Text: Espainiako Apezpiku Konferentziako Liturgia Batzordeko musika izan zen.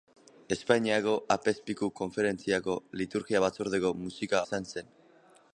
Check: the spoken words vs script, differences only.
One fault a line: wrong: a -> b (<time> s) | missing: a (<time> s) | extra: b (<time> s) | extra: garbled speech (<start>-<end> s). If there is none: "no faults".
no faults